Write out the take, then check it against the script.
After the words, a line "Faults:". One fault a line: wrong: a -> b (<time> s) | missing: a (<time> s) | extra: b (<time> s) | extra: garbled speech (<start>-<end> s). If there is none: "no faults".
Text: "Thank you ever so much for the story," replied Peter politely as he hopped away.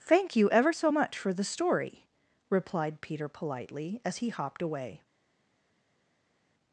"Thank you ever so much for the story," replied Peter politely as he hopped away.
Faults:
no faults